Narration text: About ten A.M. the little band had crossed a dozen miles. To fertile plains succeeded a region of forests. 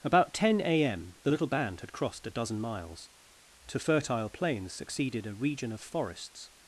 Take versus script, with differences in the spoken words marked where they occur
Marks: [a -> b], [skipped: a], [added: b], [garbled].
About ten A.M. the little band had crossed a dozen miles. To fertile plains succeeded a region of forests.